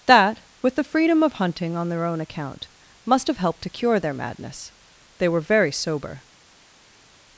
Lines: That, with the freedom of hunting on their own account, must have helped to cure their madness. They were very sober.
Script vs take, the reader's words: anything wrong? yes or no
no